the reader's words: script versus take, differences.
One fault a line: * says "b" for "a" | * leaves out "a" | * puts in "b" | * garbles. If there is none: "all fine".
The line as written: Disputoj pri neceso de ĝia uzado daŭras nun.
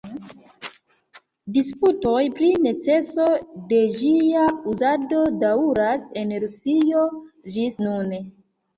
* puts in "en Rusio ĝis"